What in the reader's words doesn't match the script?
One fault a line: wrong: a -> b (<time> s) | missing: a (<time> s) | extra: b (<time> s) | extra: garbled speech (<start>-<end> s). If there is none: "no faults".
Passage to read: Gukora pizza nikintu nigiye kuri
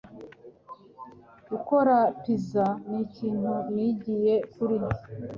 no faults